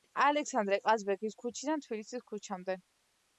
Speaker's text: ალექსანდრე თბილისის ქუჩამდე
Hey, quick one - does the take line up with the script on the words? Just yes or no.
no